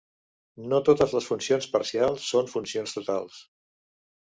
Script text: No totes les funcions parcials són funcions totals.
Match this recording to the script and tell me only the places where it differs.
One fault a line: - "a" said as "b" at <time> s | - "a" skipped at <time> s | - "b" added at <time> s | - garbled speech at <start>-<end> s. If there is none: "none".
none